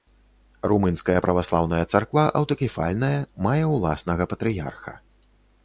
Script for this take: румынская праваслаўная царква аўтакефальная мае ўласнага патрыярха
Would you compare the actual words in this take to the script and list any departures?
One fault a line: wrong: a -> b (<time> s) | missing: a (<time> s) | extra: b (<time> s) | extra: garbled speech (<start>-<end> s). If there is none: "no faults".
no faults